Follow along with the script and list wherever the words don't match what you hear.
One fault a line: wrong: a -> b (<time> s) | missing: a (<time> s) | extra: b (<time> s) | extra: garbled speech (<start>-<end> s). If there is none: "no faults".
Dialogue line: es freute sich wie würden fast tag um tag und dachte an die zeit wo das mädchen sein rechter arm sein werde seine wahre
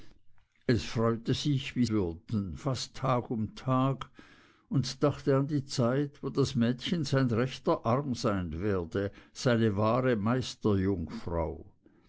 no faults